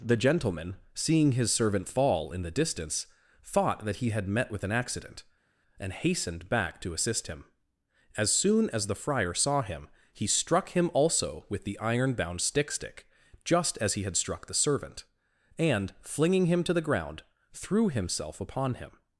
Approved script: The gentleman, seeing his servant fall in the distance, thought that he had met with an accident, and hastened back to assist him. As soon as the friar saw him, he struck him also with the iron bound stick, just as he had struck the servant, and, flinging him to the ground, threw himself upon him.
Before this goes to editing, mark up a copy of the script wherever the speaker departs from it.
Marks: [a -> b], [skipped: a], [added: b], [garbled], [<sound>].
The gentleman, seeing his servant fall in the distance, thought that he had met with an accident, and hastened back to assist him. As soon as the friar saw him, he struck him also with the iron bound stick, [added: stick] just as he had struck the servant, and, flinging him to the ground, threw himself upon him.